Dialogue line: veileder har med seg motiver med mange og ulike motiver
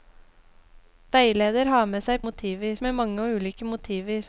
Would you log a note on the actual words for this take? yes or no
no